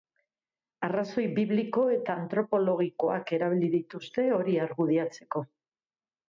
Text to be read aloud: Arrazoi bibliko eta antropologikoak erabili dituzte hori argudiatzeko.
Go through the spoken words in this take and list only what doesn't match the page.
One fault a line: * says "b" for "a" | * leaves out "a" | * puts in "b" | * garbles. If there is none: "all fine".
all fine